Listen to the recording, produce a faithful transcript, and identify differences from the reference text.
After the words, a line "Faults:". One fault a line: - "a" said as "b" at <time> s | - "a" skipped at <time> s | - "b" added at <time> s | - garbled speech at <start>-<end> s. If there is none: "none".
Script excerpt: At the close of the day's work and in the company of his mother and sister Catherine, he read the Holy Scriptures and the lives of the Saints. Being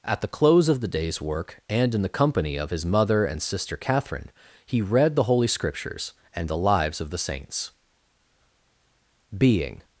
At the close of the day's work and in the company of his mother and sister Catherine, he read the Holy Scriptures and the lives of the Saints. Being
Faults:
none